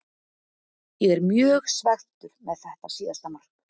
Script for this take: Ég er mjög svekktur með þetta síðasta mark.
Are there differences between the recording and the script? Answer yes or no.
no